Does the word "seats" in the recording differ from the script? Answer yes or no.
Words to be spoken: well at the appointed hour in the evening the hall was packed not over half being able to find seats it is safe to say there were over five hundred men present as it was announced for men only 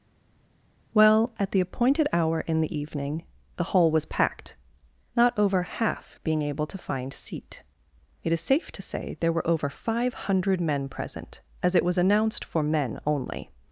yes